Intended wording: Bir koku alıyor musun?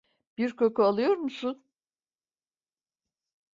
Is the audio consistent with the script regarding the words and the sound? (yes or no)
yes